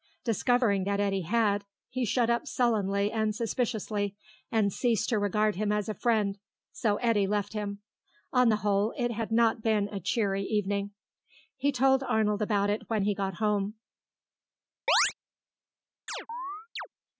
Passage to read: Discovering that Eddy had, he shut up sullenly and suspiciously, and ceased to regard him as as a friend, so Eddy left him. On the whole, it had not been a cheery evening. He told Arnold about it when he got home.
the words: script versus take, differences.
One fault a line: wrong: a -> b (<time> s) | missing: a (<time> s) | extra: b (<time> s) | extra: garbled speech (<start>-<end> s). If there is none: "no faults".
missing: as (5.9 s)